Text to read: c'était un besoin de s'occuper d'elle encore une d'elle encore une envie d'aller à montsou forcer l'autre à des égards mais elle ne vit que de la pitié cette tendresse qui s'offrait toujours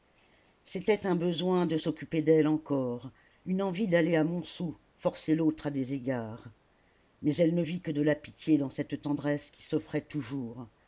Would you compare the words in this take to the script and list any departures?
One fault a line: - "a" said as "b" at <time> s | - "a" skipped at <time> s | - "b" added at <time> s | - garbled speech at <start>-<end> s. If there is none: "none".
- "d'elle encore une" skipped at 3.6 s
- "dans" added at 8.6 s